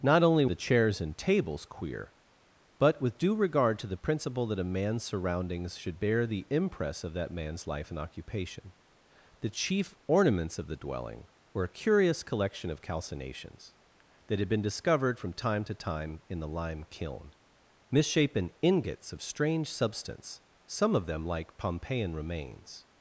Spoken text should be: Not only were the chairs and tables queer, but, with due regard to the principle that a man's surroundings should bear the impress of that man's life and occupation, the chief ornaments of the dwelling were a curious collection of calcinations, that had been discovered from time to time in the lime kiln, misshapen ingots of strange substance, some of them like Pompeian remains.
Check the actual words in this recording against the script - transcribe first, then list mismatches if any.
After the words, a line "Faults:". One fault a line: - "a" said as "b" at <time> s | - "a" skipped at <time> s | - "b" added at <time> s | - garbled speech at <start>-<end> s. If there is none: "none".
Not only the chairs and tables queer, but, with due regard to the principle that a man's surroundings should bear the impress of that man's life and occupation, the chief ornaments of the dwelling were a curious collection of calcinations, that had been discovered from time to time in the lime kiln, misshapen ingots of strange substance, some of them like Pompeian remains.
Faults:
- "were" skipped at 0.5 s